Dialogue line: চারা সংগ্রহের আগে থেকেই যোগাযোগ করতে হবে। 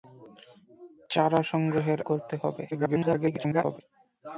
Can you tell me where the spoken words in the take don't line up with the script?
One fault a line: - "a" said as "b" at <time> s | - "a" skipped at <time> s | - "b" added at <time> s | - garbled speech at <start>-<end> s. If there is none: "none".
- "আগে থেকেই যোগাযোগ" skipped at 2.0 s
- garbled speech at 2.7-3.8 s